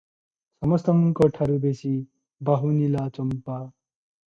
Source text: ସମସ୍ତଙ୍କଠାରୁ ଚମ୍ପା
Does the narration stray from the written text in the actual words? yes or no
yes